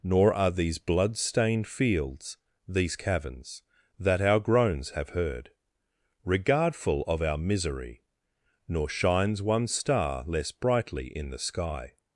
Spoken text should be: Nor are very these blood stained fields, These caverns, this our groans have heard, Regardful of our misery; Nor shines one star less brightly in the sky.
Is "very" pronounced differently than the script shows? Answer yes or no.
yes